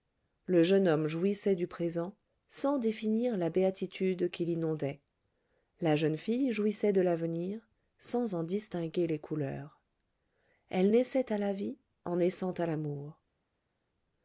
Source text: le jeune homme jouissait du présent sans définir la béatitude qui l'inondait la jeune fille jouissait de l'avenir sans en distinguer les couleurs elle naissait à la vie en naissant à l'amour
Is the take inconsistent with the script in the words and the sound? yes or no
no